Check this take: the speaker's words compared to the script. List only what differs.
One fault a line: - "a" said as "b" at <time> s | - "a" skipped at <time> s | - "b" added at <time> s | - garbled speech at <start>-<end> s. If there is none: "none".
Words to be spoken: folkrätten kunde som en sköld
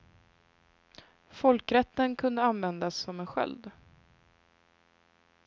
- "användas" added at 2.4 s